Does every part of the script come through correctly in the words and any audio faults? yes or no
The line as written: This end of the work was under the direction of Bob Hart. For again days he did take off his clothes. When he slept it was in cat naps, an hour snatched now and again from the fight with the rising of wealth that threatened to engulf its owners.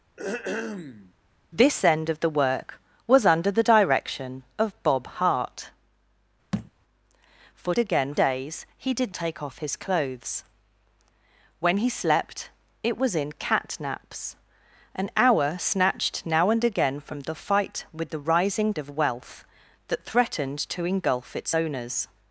no